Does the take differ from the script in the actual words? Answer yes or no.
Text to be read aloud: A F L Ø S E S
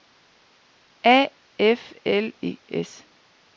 yes